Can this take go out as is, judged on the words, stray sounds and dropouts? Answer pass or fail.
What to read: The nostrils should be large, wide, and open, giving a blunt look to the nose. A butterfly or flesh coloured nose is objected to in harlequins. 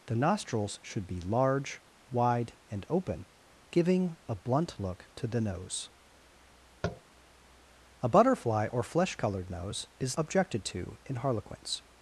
fail